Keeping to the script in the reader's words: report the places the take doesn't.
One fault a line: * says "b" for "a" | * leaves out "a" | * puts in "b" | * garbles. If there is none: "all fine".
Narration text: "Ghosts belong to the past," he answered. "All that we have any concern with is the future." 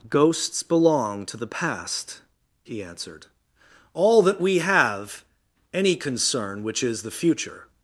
* says "which" for "with"